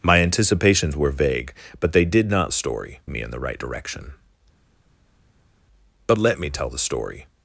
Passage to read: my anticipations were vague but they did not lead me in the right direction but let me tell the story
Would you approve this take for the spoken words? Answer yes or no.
no